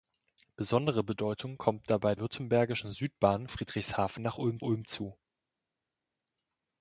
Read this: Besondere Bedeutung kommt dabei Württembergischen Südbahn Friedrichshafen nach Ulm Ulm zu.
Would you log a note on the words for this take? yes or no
no